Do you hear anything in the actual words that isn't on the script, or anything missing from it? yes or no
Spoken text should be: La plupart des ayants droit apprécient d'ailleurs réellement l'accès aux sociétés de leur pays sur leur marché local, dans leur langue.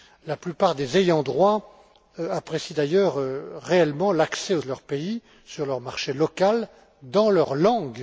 yes